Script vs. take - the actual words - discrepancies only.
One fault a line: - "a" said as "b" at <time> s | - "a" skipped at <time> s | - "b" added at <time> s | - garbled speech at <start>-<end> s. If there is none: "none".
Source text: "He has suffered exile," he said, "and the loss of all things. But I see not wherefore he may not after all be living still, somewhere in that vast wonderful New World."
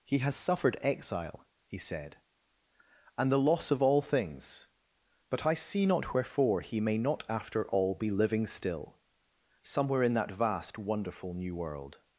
none